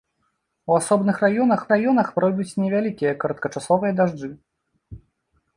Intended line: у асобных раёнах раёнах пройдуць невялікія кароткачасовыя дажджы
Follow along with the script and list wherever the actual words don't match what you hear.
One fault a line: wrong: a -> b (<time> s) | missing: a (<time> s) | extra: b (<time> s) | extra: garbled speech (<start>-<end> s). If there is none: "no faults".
no faults